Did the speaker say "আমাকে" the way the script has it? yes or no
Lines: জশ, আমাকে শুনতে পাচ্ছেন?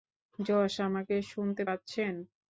yes